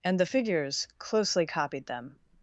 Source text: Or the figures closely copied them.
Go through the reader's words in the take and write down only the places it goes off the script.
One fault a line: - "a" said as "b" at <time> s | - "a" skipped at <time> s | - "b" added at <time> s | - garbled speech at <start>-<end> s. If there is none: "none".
- "Or" said as "And" at 0.0 s